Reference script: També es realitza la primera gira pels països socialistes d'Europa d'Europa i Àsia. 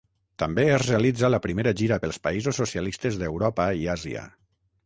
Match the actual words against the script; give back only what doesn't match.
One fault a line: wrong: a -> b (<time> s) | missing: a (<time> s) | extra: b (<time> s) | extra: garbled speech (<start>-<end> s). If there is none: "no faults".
missing: d'Europa (3.7 s)